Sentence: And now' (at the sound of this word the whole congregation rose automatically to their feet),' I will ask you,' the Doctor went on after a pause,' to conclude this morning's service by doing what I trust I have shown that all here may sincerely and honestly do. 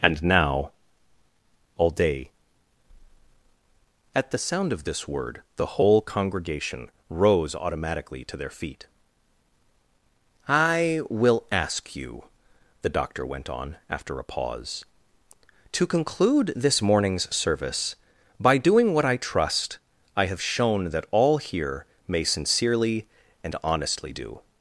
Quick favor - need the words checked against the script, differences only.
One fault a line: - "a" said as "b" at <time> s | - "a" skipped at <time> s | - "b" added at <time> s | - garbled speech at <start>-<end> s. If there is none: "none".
- "all day" added at 1.8 s